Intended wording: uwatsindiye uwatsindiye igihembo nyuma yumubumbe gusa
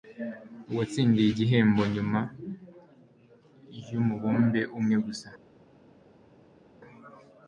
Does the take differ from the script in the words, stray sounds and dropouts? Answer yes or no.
yes